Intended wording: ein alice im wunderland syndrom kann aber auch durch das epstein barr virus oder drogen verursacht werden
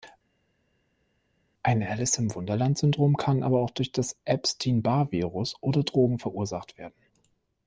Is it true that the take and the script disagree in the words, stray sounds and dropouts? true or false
false